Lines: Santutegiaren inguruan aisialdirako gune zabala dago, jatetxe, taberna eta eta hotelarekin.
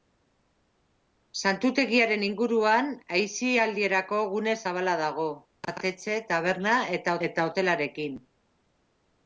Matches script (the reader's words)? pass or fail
pass